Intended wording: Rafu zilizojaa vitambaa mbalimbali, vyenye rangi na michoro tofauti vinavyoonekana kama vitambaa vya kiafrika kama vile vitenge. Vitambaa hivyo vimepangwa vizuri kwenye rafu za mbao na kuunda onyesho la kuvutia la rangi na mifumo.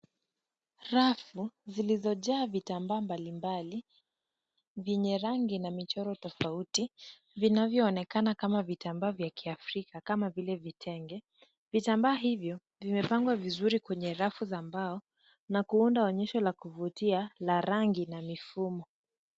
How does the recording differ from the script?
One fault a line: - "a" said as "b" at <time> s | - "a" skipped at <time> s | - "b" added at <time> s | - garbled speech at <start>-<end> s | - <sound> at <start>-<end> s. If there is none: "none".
none